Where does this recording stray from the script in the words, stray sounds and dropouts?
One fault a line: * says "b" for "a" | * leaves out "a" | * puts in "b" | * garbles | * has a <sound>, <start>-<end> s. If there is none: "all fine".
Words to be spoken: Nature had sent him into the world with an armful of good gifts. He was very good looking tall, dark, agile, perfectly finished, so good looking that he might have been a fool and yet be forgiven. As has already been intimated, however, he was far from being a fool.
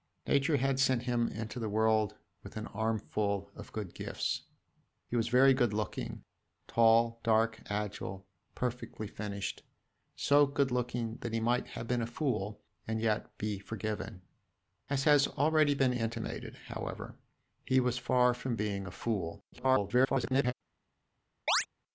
* garbles
* has a chirp, 21.5-21.7 s